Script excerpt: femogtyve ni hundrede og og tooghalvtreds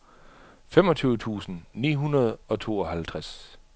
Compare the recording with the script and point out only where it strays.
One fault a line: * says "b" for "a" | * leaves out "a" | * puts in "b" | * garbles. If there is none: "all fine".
* puts in "tusind"
* leaves out "og"